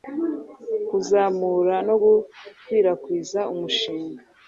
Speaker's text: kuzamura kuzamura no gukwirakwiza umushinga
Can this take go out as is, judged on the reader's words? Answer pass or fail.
fail